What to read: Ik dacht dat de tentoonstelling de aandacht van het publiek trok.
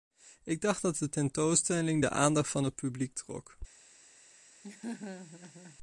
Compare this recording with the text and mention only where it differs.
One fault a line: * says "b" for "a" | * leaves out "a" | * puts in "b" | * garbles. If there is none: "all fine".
all fine